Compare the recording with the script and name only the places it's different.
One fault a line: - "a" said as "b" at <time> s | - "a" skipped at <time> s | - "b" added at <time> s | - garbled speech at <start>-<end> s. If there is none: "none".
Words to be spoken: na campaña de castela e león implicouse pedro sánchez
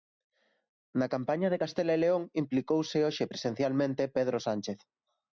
- "hoxe presencialmente" added at 3.1 s